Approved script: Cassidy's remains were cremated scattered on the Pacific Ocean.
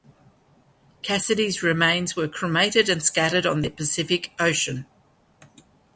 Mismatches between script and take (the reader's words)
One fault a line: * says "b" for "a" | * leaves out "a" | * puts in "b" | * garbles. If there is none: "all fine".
* puts in "and"